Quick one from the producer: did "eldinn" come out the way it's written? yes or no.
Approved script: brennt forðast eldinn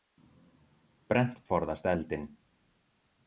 yes